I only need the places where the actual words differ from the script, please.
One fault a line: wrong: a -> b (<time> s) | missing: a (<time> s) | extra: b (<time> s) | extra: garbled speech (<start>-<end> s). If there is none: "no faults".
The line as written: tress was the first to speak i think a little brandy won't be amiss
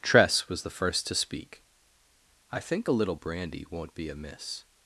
no faults